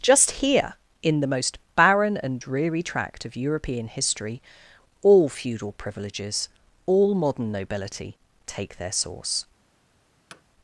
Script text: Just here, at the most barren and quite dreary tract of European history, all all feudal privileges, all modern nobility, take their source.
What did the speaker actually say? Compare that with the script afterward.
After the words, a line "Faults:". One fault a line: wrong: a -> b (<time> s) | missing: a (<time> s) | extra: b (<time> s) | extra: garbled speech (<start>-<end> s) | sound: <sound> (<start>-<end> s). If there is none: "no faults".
Just here, in the most barren and dreary tract of European history, all feudal privileges, all modern nobility, take their source.
Faults:
wrong: at -> in (1.0 s)
missing: quite (2.4 s)
missing: all (5.3 s)
sound: thud (10.3-10.4 s)